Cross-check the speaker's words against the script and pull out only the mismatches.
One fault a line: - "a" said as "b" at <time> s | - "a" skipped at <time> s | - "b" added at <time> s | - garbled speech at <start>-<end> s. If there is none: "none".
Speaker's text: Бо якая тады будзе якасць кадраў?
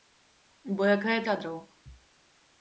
- "тады будзе якасць" skipped at 1.2 s